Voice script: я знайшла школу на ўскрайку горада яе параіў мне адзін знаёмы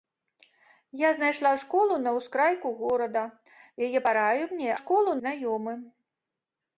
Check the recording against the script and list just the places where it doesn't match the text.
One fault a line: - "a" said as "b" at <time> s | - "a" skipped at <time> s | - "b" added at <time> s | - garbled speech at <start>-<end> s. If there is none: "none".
- "адзін" said as "школу" at 4.8 s